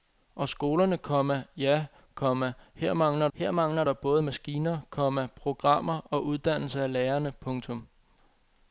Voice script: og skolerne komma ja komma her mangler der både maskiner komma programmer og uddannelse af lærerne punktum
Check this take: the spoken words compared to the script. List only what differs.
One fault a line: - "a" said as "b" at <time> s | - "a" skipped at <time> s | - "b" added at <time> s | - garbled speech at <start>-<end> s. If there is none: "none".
- "her mangler" added at 3.3 s